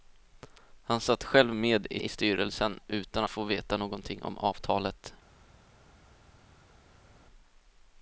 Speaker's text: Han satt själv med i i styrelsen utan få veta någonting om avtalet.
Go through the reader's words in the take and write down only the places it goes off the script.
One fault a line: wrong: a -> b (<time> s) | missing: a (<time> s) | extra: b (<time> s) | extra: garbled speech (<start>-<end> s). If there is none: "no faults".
no faults